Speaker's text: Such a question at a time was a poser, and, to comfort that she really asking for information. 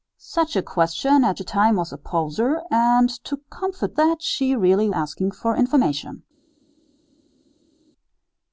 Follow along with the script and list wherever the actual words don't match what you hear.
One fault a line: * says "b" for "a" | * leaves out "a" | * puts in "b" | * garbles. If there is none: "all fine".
all fine